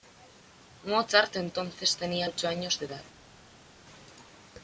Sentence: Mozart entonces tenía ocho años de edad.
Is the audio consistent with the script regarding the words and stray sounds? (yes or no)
yes